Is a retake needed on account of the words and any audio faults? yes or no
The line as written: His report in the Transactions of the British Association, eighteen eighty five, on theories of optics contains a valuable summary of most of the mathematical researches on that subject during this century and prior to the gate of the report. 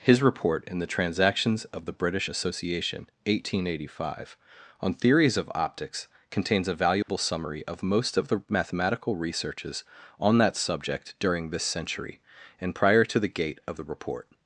yes